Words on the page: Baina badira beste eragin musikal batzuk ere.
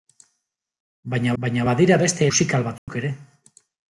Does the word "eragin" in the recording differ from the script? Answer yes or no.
yes